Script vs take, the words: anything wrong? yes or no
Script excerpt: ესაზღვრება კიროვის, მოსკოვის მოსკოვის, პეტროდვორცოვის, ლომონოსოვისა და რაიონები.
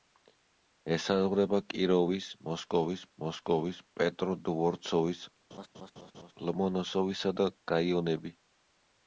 no